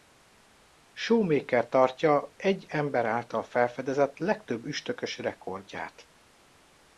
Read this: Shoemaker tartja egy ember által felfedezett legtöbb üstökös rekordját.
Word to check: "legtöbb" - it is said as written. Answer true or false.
true